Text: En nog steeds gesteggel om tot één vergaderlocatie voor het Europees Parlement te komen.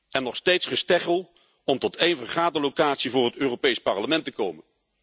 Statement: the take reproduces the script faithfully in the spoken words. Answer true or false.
true